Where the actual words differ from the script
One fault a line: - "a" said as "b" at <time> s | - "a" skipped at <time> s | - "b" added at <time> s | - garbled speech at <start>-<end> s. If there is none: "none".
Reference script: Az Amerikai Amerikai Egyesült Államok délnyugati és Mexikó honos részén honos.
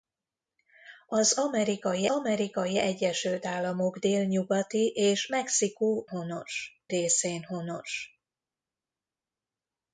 none